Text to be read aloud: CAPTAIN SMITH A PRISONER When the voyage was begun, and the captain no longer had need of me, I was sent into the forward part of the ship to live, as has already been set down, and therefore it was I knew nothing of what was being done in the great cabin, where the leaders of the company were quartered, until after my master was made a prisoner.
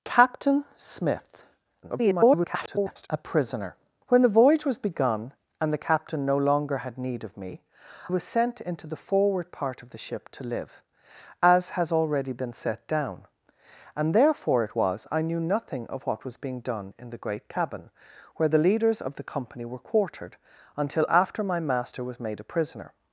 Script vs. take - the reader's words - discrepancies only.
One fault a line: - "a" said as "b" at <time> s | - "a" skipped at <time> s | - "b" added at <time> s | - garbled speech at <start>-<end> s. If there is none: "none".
- garbled speech at 1.8-3.1 s
- "I" skipped at 7.6 s